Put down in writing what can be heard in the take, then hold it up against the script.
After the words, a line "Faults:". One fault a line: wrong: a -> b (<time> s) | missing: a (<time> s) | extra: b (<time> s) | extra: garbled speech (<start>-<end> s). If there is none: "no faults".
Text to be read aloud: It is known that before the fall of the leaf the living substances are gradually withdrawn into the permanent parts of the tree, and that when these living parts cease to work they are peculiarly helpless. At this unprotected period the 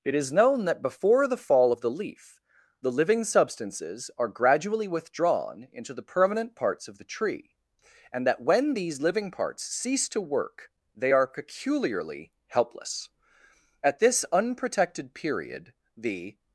It is known that before the fall of the leaf the living substances are gradually withdrawn into the permanent parts of the tree, and that when these living parts cease to work they are peculiarly helpless. At this unprotected period the
Faults:
no faults